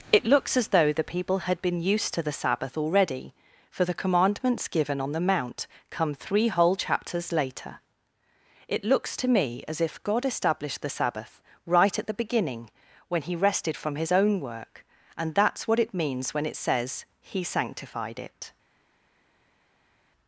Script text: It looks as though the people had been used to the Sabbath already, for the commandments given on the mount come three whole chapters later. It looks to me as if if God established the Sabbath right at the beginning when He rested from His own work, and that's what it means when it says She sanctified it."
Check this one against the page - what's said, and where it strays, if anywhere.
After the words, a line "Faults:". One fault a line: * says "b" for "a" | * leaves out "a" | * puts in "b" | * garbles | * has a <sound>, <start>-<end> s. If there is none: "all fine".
It looks as though the people had been used to the Sabbath already, for the commandments given on the mount come three whole chapters later. It looks to me as if God established the Sabbath right at the beginning when He rested from His own work, and that's what it means when it says He sanctified it."
Faults:
* leaves out "if"
* says "He" for "She"